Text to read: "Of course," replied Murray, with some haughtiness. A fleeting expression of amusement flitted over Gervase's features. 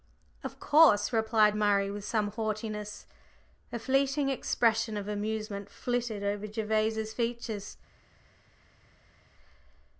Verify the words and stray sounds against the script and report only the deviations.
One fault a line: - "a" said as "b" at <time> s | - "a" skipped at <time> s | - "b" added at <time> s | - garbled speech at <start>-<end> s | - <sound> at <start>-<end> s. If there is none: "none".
none